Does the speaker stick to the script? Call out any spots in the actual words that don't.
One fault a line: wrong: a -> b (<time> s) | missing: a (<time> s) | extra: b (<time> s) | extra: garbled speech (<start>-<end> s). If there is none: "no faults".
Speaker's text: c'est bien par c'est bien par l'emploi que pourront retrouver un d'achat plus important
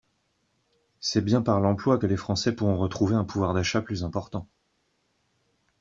wrong: c'est bien par l'emploi que -> l'emploi que les français (1.6 s)
extra: pouvoir (3.2 s)